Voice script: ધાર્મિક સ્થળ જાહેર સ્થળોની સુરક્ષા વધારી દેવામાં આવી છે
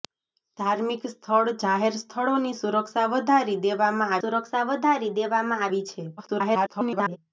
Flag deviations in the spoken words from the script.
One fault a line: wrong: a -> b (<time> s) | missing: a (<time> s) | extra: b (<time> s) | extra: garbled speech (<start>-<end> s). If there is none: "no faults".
extra: સુરક્ષા વધારી દેવામાં (4.2 s)
extra: garbled speech (6.2-7.2 s)